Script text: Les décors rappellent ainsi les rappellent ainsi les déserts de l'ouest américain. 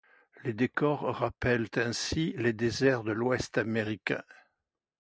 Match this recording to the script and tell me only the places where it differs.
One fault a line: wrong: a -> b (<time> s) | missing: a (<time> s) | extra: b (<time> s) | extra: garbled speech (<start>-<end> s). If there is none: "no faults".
missing: rappellent ainsi les (2.5 s)